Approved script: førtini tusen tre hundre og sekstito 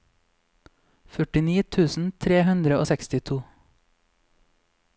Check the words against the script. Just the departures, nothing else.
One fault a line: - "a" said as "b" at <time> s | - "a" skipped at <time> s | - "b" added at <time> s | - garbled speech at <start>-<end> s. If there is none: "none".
none